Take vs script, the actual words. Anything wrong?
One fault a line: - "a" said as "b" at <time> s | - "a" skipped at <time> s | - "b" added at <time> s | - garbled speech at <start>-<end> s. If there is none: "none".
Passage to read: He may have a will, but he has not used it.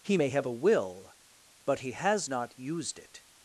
none